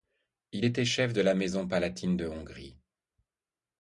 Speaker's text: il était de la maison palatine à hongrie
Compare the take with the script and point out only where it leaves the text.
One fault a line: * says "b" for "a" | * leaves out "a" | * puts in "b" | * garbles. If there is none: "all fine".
* puts in "chef"
* says "de" for "à"